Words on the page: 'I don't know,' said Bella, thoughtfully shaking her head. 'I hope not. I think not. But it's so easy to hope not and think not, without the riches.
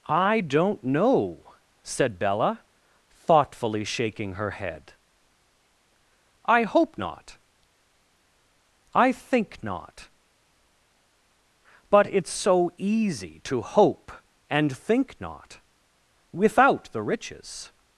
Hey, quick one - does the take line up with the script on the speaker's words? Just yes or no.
no